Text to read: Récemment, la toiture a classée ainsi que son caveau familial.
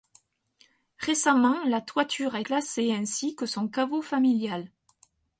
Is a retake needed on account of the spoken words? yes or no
no